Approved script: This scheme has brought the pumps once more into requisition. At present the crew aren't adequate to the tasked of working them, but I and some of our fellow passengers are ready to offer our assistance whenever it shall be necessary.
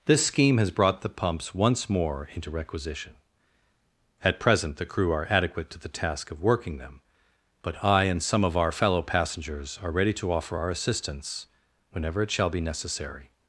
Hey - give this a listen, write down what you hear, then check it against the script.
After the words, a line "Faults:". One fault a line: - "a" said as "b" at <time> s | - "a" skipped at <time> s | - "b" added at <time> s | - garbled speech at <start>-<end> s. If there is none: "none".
This scheme has brought the pumps once more into requisition. At present the crew are adequate to the task of working them, but I and some of our fellow passengers are ready to offer our assistance whenever it shall be necessary.
Faults:
- "aren't" said as "are" at 5.1 s
- "tasked" said as "task" at 5.9 s